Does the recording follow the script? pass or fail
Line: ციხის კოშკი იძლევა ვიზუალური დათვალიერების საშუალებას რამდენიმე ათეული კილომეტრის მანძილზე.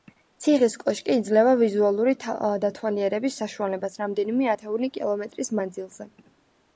pass